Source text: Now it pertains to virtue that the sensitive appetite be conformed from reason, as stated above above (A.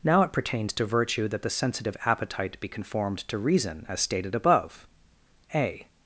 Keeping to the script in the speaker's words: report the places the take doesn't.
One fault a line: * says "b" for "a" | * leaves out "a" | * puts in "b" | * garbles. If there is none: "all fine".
* says "to" for "from"
* leaves out "above"